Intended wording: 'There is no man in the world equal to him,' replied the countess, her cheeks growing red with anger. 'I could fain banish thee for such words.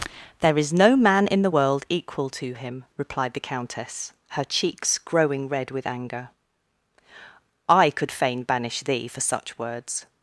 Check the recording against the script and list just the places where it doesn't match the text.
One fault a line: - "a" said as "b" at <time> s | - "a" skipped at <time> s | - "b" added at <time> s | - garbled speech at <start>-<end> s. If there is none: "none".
none